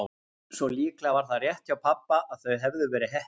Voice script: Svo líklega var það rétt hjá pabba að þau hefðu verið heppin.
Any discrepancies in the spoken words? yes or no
no